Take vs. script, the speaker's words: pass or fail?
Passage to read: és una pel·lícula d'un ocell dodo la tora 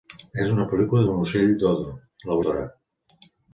pass